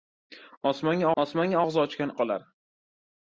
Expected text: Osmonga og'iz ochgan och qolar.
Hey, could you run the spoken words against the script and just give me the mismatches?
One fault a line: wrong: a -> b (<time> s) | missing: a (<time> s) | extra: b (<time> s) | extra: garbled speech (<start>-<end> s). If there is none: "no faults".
extra: osmonga (1.2 s)
missing: och (2.1 s)